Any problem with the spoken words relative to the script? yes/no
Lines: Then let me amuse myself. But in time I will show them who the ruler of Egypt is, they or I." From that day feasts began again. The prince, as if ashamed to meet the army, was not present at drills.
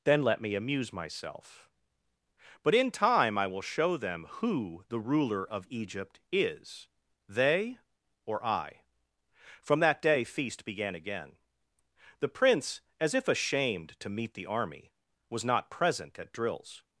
yes